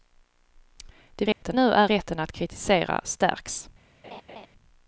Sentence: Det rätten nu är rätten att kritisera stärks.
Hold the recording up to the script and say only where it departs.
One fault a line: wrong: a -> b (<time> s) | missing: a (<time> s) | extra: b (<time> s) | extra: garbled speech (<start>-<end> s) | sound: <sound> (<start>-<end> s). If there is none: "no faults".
sound: dropout (1.3-1.4 s)
sound: laugh (4.0-4.5 s)